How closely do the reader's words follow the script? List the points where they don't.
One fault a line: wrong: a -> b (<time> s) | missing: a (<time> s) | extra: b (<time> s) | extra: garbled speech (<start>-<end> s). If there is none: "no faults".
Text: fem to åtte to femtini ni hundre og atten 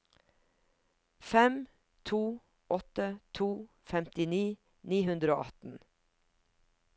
no faults